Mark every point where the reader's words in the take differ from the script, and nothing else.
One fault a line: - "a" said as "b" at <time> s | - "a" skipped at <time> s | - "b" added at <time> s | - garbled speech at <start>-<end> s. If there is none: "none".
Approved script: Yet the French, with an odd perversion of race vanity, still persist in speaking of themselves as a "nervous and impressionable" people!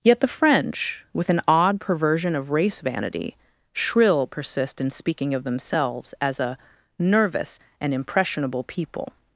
- "still" said as "shrill" at 3.7 s